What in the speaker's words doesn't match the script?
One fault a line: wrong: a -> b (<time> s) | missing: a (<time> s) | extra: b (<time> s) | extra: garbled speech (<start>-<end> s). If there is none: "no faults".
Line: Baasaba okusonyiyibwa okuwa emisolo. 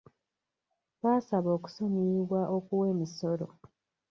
no faults